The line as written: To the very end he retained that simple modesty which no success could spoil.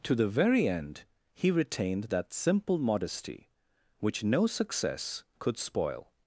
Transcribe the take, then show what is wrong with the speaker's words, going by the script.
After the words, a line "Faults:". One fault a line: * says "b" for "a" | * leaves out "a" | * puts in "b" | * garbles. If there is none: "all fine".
To the very end he retained that simple modesty which no success could spoil.
Faults:
all fine